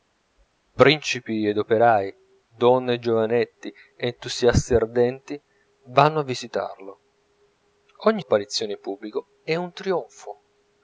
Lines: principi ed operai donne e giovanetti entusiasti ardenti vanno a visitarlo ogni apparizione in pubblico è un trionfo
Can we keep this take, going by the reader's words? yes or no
yes